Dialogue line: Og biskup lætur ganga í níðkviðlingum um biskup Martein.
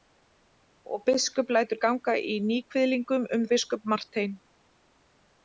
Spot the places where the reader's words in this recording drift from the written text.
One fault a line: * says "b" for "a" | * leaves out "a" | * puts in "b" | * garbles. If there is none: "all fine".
all fine